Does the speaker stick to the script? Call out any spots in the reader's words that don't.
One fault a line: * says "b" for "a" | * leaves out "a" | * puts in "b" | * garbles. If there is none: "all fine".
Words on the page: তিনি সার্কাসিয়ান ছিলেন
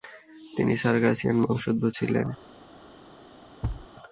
* puts in "বংশোদ্ভূত"